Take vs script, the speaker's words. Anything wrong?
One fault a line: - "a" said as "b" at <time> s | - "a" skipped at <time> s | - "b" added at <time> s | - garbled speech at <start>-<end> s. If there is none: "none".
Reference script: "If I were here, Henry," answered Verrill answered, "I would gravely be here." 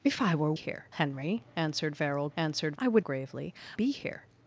none